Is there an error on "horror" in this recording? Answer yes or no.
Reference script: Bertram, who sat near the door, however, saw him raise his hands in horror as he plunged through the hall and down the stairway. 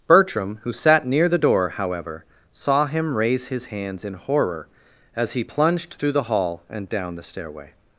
no